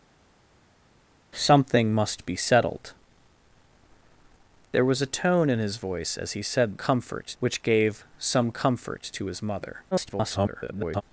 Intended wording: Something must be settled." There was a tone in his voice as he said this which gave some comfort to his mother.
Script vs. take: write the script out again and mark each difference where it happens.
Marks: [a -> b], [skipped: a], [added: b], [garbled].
Something must be settled." There was a tone in his voice as he said [this -> comfort] which gave some comfort to his mother. [garbled]